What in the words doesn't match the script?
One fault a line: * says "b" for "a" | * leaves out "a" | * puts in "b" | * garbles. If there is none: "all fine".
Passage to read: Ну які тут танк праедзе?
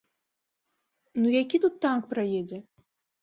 all fine